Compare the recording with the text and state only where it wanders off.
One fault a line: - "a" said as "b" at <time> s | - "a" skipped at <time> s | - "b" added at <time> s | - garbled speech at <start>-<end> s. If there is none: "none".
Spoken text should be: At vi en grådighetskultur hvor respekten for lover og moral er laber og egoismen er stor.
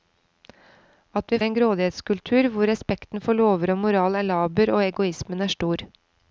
none